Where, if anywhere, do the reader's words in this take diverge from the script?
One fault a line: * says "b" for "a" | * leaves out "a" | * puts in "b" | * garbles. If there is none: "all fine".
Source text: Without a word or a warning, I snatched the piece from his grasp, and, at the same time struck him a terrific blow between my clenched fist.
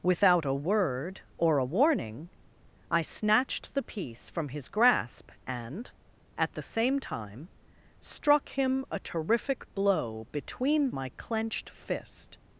all fine